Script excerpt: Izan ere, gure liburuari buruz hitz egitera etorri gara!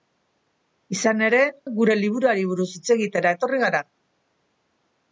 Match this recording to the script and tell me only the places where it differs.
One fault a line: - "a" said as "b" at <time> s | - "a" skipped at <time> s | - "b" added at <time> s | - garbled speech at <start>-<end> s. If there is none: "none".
none